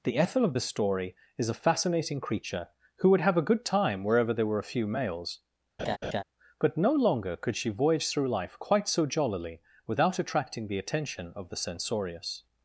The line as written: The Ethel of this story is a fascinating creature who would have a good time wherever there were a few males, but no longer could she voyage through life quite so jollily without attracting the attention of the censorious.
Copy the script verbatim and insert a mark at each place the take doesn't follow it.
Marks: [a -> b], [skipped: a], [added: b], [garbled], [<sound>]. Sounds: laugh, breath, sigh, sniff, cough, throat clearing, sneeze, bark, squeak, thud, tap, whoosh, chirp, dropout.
The Ethel of [this -> the] story is a fascinating creature who would have a good time wherever there were a few males, [laugh] but no longer could she voyage through life quite so jollily without attracting the attention of the censorious.